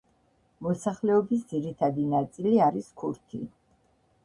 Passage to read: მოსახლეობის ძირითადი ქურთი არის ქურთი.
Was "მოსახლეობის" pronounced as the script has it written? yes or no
yes